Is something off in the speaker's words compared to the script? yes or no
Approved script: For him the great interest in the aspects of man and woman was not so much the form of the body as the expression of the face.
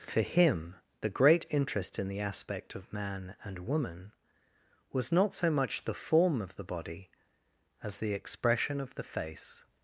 yes